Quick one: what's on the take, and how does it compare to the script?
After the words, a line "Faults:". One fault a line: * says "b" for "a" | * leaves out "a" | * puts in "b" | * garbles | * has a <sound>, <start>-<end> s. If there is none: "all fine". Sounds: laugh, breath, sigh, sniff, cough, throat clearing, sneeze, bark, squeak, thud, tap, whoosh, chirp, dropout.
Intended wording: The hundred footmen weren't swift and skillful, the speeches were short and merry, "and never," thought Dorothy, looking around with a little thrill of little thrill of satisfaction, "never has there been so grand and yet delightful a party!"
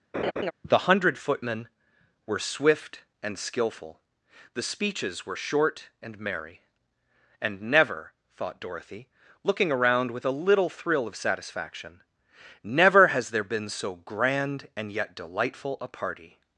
The hundred footmen were swift and skillful, the speeches were short and merry, "and never," thought Dorothy, looking around with a little thrill of satisfaction, "never has there been so grand and yet delightful a party!"
Faults:
* has a laugh, 0.1-0.5 s
* says "were" for "weren't"
* leaves out "little thrill of"